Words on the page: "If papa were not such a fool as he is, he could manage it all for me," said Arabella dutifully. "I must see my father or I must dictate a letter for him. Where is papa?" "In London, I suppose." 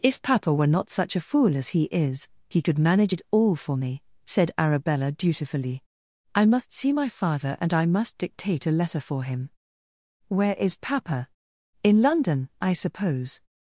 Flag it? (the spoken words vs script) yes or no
yes